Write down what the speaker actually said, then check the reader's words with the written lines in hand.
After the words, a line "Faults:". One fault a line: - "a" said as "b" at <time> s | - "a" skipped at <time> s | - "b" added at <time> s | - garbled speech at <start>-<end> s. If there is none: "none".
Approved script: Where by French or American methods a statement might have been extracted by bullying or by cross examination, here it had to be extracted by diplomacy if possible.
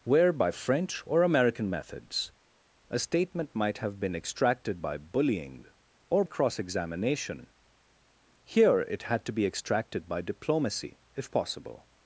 Where by French or American methods a statement might have been extracted by bullying or cross examination, here it had to be extracted by diplomacy if possible.
Faults:
- "by" skipped at 6.2 s